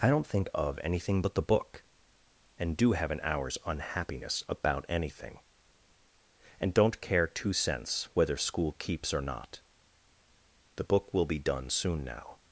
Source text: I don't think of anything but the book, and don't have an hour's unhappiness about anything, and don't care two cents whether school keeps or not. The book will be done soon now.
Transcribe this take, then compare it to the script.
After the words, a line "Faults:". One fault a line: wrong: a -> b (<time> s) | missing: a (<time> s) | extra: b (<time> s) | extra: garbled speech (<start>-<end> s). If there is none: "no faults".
I don't think of anything but the book, and do have an hour's unhappiness about anything, and don't care two cents whether school keeps or not. The book will be done soon now.
Faults:
wrong: don't -> do (2.8 s)